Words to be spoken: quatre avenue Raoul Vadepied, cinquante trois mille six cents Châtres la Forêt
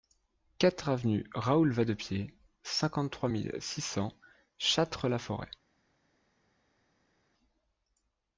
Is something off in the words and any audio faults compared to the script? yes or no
no